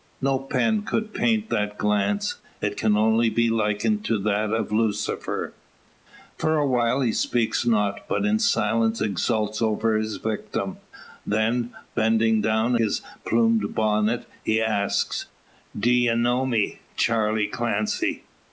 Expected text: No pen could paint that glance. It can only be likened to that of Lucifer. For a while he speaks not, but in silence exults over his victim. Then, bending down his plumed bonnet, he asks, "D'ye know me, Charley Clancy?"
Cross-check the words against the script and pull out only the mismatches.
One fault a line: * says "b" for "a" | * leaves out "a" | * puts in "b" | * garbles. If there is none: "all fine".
all fine